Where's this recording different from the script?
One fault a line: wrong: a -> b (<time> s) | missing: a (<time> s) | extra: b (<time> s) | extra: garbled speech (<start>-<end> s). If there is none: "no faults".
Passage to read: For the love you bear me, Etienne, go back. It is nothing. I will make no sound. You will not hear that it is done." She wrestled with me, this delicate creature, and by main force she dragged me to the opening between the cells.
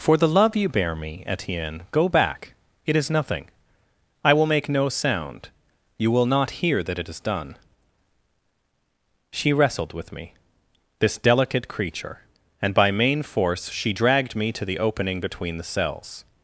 no faults